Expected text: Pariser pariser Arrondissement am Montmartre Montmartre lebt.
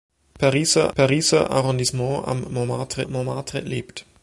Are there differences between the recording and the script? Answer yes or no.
no